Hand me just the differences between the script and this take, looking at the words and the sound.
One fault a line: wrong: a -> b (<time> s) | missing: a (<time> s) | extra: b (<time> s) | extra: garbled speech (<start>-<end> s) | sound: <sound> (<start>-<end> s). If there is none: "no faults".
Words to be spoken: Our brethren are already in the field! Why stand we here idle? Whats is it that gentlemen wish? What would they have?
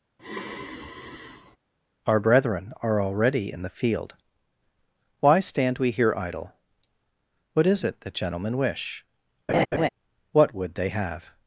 sound: sigh (0.2-1.6 s)
wrong: Whats -> What (7.5 s)
sound: laugh (9.5-9.9 s)